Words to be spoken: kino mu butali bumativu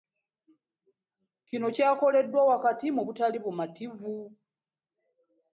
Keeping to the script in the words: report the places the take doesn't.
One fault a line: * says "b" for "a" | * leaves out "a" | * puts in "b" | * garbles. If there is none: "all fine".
* puts in "kyakoleddwa wakati"